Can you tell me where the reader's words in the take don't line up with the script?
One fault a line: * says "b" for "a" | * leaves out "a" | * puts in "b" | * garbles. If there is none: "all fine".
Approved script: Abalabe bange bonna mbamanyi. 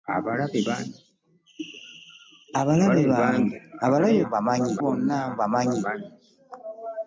* says "mbamanyi" for "bange"